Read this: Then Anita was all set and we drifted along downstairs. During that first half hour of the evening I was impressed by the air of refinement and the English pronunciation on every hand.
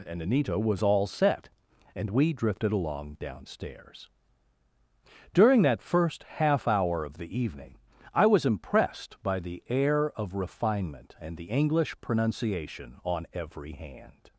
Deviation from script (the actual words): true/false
true